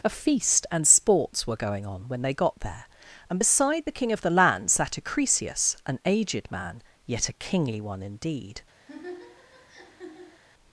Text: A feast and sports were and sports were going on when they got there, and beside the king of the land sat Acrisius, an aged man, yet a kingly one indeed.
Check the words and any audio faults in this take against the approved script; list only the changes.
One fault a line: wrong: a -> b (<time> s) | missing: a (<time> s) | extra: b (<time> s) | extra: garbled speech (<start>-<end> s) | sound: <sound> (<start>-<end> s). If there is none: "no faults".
missing: and sports were (1.6 s)
sound: laugh (8.9-10.4 s)